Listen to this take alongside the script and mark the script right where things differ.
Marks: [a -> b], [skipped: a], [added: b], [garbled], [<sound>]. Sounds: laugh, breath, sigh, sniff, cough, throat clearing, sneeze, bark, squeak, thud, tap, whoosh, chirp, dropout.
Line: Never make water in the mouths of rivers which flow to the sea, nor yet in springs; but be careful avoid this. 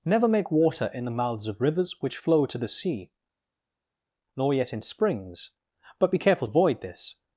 Never make water in the mouths of rivers which flow to the sea, nor yet in springs; but be careful avoid this.